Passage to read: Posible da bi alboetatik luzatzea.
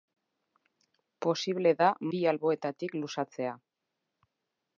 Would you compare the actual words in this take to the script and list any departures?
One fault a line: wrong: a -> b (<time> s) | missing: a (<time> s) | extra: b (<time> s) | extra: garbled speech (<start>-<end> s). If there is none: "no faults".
no faults